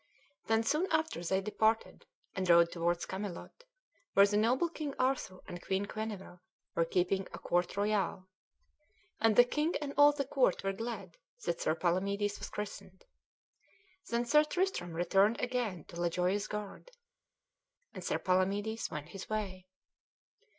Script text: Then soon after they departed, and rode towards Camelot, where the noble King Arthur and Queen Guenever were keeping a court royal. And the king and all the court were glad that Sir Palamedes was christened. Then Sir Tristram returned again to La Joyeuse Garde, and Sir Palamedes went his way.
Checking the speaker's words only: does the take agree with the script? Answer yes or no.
yes